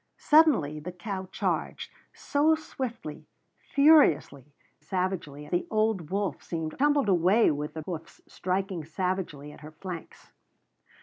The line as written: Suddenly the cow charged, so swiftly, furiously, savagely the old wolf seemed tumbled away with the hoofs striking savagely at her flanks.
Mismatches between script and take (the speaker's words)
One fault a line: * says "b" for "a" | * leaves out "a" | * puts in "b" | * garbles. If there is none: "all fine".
all fine